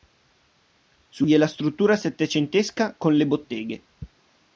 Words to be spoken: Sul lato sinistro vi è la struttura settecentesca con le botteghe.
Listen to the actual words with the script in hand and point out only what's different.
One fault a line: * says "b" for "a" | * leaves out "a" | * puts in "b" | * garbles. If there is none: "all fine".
* leaves out "lato sinistro"